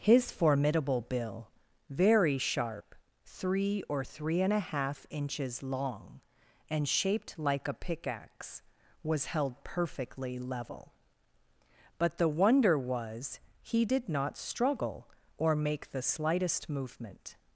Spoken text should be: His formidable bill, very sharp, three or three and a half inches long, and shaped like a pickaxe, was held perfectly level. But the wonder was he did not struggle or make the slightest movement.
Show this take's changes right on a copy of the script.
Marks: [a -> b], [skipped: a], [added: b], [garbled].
His formidable bill, very sharp, three or three and a half inches long, and shaped like a pickaxe, was held perfectly level. But the wonder was he did not struggle or make the slightest movement.